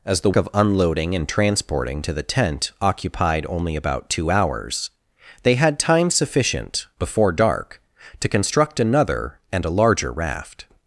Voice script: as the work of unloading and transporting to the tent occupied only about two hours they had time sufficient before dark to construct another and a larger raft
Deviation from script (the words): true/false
true